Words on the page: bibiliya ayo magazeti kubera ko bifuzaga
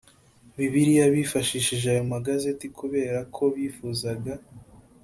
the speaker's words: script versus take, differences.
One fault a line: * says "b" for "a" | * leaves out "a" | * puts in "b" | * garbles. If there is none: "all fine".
* puts in "bifashishije"